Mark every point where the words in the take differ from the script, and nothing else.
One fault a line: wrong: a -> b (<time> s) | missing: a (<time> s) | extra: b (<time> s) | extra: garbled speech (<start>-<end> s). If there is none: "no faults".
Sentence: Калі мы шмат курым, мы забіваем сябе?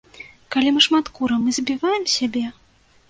no faults